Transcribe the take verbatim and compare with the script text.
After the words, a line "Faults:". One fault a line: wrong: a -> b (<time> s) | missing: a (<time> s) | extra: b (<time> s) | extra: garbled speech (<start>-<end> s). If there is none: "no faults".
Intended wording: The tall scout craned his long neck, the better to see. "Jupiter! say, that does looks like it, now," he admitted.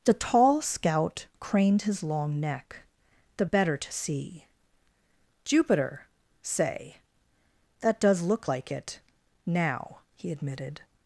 The tall scout craned his long neck, the better to see. "Jupiter! say, that does look like it, now," he admitted.
Faults:
wrong: looks -> look (8.2 s)